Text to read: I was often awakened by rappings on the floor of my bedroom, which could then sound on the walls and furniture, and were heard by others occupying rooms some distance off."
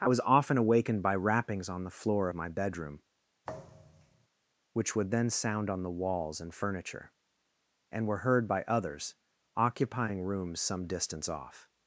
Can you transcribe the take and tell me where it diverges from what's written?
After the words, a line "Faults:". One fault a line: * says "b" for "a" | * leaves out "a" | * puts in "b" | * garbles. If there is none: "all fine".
I was often awakened by rappings on the floor of my bedroom, which would then sound on the walls and furniture, and were heard by others occupying rooms some distance off."
Faults:
* says "would" for "could"